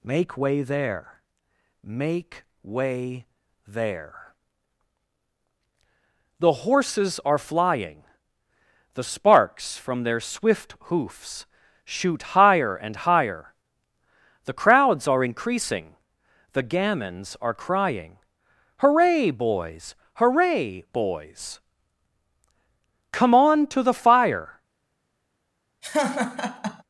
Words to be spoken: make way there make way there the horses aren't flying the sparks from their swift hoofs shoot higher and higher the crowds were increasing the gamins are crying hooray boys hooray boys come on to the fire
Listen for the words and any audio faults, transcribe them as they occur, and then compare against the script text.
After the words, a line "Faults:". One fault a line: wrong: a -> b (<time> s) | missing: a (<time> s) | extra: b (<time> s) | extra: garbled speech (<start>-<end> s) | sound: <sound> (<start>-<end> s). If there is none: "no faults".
make way there make way there the horses are flying the sparks from their swift hoofs shoot higher and higher the crowds are increasing the gamins are crying hooray boys hooray boys come on to the fire
Faults:
wrong: aren't -> are (7.2 s)
wrong: were -> are (15.1 s)
sound: laugh (25.8-26.8 s)